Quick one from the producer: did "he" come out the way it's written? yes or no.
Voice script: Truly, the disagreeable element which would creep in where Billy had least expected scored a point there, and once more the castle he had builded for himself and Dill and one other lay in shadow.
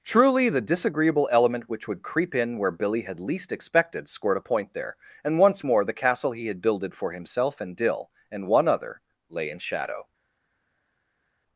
yes